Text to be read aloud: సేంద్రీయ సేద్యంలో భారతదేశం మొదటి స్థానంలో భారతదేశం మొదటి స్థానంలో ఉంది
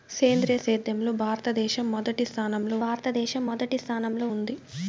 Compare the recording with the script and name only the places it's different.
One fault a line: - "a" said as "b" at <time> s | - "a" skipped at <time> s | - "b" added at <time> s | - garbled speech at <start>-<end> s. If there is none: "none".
none